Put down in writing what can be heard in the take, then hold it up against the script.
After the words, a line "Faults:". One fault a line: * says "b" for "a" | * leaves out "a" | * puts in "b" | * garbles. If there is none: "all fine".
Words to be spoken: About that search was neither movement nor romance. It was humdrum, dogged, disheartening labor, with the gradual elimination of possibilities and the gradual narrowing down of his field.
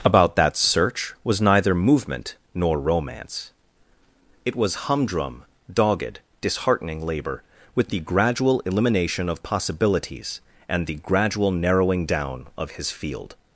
About that search was neither movement nor romance. It was humdrum, dogged, disheartening labor, with the gradual elimination of possibilities and the gradual narrowing down of his field.
Faults:
all fine